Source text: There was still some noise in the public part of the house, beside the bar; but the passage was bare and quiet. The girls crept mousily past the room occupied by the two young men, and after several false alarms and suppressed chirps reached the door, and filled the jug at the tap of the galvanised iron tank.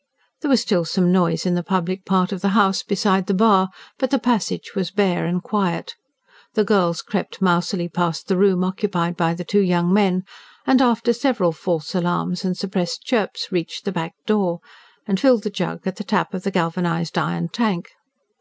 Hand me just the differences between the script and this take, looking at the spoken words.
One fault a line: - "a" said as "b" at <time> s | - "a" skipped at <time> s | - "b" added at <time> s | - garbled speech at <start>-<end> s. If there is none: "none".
- "back" added at 13.9 s